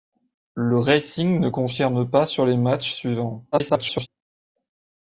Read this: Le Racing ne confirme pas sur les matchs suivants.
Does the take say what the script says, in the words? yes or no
no